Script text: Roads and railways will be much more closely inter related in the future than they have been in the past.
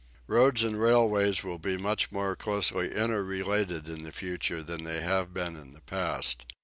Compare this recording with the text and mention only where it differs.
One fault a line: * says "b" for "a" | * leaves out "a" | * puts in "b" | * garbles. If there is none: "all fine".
all fine